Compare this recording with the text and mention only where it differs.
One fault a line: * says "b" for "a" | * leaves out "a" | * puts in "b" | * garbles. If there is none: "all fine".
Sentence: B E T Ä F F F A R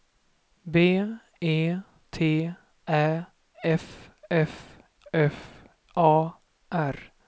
all fine